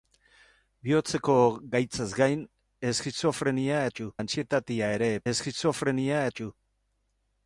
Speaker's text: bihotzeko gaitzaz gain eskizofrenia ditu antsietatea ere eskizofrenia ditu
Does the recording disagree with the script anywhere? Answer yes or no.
no